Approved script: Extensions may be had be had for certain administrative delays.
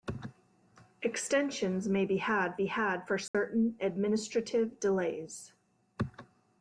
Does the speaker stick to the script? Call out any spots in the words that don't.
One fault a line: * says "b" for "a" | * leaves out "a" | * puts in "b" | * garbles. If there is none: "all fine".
all fine